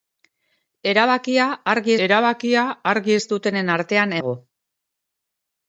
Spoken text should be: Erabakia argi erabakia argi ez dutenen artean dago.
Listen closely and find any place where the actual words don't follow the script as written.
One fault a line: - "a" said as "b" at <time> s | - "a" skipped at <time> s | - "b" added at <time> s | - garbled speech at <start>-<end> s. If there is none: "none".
none